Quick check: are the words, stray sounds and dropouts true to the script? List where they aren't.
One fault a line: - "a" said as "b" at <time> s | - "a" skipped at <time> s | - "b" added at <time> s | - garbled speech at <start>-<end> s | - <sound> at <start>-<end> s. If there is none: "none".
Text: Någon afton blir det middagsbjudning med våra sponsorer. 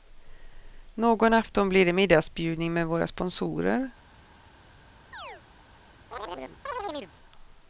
- chirp at 5.1-5.4 s
- chirp at 6.1-7.1 s